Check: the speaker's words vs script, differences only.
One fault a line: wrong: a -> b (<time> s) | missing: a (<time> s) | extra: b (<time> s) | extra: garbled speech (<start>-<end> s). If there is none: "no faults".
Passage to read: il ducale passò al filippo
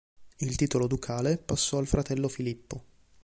extra: titolo (0.6 s)
extra: fratello (1.9 s)